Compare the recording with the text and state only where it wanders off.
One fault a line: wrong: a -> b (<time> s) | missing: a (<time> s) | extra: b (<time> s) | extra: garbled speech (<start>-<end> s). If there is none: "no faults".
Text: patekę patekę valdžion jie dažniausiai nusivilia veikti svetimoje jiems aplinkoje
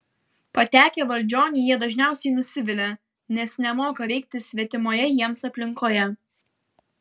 missing: patekę (1.0 s)
extra: nes nemoka (3.4 s)